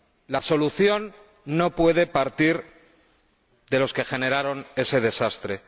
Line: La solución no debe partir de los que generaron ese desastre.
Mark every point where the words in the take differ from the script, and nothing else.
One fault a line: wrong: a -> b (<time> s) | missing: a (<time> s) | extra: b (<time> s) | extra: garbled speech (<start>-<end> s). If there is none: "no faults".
wrong: debe -> puede (1.8 s)